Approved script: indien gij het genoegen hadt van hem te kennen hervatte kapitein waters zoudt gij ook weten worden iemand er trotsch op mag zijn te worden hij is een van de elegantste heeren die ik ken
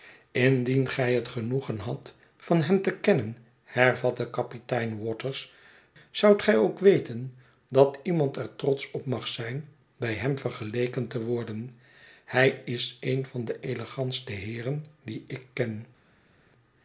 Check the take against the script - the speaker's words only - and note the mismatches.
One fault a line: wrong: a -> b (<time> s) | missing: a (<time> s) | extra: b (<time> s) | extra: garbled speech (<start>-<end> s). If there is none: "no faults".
wrong: worden -> dat (7.7 s)
extra: bij hem vergeleken (10.0 s)